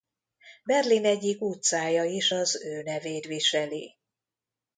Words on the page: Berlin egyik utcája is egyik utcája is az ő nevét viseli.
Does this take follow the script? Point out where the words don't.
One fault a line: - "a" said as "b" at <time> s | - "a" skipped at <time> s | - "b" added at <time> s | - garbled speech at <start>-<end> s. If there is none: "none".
- "egyik utcája is" skipped at 2.3 s